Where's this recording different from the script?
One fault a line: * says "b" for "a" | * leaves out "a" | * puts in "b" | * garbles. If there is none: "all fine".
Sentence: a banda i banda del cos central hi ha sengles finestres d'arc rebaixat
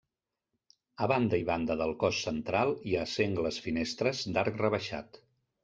all fine